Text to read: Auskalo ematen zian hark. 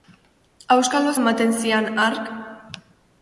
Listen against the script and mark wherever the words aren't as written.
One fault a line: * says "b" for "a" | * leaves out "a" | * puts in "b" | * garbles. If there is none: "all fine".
all fine